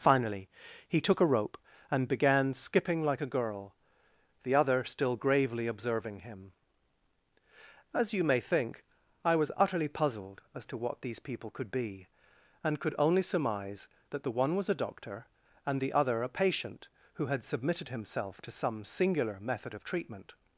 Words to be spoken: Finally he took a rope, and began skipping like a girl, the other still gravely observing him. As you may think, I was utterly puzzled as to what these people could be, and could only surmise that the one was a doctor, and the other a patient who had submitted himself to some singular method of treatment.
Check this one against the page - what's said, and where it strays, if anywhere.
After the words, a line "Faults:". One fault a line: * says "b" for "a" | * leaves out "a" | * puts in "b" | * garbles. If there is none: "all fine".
Finally he took a rope, and began skipping like a girl, the other still gravely observing him. As you may think, I was utterly puzzled as to what these people could be, and could only surmise that the one was a doctor, and the other a patient who had submitted himself to some singular method of treatment.
Faults:
all fine